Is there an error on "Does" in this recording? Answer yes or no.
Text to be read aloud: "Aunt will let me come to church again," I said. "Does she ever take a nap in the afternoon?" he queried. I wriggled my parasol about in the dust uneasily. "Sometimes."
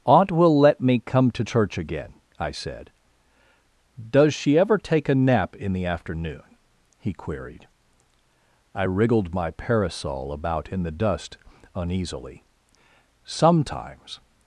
no